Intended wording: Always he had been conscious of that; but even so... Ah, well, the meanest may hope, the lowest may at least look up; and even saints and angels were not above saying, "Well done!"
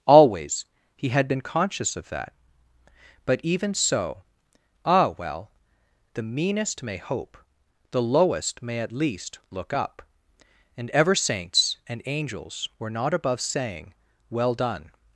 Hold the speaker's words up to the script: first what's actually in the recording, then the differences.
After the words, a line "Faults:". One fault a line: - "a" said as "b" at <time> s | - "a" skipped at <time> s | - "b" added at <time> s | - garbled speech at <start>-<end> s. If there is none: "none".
Always he had been conscious of that; but even so... Ah, well, the meanest may hope, the lowest may at least look up; and ever saints and angels were not above saying, "Well done!"
Faults:
- "even" said as "ever" at 10.9 s